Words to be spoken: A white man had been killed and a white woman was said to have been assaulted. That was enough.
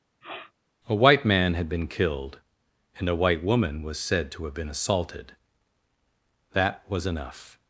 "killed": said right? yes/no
yes